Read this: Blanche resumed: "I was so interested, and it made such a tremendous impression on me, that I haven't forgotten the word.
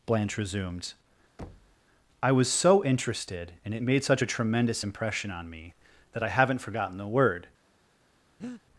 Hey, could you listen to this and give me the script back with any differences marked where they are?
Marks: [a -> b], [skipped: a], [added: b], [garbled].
Blanche resumed: "I was so interested, and it made such a tremendous impression on me, that I haven't forgotten the word.